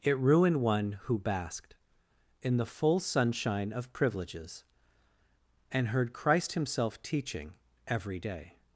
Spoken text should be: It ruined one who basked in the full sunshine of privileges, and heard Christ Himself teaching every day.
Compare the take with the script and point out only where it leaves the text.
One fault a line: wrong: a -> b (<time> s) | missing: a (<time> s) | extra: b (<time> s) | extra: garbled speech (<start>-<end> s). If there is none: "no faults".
no faults